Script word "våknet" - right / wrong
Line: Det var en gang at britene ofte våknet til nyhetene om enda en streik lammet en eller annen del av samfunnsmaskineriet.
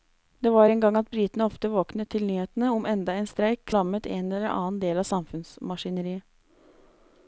right